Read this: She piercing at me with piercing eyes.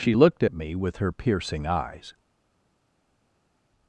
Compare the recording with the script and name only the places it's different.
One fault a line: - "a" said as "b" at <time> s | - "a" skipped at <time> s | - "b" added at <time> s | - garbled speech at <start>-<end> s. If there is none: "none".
- "piercing" said as "looked" at 0.1 s
- "her" added at 1.0 s